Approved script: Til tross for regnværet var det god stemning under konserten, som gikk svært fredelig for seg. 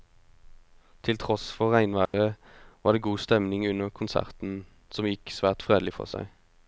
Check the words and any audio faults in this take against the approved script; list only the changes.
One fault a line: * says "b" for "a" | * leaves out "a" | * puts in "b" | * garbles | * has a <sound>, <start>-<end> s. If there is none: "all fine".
* has a dropout, 2.1-2.1 s